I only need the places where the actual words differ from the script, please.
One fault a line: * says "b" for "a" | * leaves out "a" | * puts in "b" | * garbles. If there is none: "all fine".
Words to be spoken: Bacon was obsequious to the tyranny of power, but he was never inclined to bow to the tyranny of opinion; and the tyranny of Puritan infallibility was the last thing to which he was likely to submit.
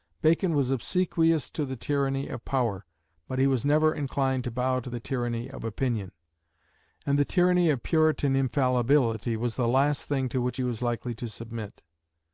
all fine